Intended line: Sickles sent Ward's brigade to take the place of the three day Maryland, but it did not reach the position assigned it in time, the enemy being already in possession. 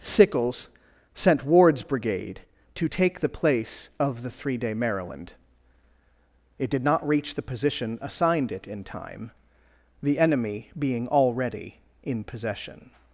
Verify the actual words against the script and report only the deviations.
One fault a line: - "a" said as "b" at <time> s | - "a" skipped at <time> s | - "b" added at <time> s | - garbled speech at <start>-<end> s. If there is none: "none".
- "but" skipped at 5.3 s